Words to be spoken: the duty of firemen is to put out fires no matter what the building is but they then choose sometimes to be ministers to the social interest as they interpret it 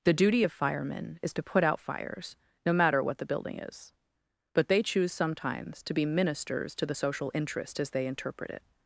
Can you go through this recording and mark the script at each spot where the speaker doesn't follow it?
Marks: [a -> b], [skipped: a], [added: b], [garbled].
the duty of firemen is to put out fires no matter what the building is but they [skipped: then] choose sometimes to be ministers to the social interest as they interpret it